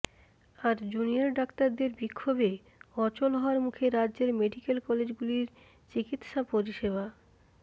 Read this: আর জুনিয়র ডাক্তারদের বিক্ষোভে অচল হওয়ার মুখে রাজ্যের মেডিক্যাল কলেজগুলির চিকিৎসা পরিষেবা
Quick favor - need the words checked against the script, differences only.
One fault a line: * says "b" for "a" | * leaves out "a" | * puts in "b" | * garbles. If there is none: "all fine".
all fine